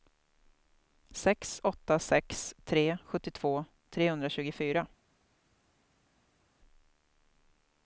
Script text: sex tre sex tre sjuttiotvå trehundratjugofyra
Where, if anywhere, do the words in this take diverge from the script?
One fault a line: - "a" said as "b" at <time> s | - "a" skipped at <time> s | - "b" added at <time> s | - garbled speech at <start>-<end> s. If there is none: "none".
- "tre" said as "åtta" at 1.6 s